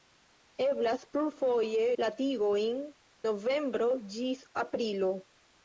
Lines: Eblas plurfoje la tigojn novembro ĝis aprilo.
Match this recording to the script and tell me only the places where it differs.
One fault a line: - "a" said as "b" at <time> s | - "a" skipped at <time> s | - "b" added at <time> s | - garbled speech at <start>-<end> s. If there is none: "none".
none